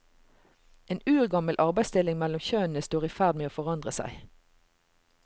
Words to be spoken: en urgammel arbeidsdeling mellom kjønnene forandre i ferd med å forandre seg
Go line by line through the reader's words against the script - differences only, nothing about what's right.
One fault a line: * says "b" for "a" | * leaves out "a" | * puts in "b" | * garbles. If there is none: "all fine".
* says "står" for "forandre"